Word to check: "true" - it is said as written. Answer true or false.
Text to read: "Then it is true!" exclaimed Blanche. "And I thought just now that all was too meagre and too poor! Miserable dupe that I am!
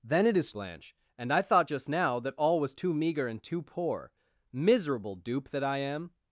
false